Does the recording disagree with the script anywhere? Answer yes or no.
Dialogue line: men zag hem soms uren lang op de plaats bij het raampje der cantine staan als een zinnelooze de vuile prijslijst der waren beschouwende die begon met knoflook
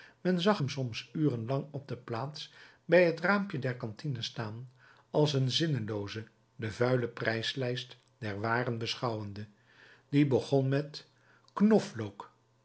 no